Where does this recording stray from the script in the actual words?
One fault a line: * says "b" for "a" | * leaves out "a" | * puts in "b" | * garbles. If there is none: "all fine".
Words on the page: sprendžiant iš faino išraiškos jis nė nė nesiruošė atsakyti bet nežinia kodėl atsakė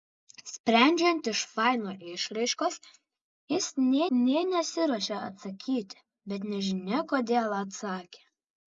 all fine